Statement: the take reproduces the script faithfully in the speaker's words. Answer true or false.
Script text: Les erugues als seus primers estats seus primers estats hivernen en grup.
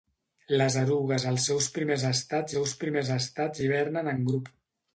true